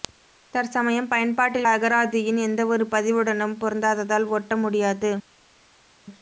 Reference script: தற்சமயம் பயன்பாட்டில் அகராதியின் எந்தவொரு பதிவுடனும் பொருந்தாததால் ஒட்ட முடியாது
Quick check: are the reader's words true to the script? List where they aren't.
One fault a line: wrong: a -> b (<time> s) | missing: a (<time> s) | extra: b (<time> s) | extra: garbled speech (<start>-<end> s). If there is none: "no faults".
no faults